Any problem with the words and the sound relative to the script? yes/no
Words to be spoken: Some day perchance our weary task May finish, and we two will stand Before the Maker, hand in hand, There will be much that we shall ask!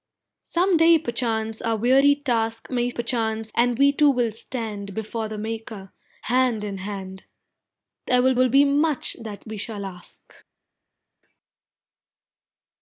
yes